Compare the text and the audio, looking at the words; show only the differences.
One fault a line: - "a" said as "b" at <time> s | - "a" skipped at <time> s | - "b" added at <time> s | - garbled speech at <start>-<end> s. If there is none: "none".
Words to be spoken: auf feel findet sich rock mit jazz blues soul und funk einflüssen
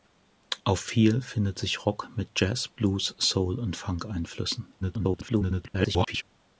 - garbled speech at 4.8-6.2 s